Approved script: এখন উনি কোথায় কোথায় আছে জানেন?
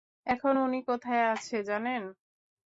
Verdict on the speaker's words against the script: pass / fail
fail